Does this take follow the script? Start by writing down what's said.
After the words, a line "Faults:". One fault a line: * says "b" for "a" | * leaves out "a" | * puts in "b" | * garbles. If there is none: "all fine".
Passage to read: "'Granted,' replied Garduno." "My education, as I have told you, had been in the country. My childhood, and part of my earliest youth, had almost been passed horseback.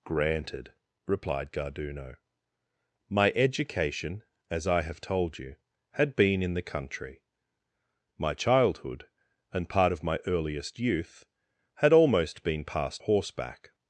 "'Granted,' replied Garduno." "My education, as I have told you, had been in the country. My childhood, and part of my earliest youth, had almost been passed horseback.
Faults:
all fine